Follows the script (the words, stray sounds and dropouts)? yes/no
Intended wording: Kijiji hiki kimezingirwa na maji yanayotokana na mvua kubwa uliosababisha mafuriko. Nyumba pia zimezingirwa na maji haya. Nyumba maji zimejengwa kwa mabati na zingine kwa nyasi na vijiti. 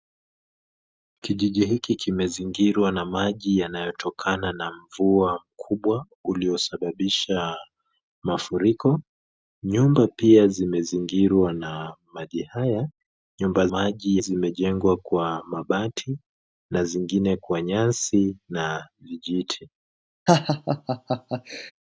no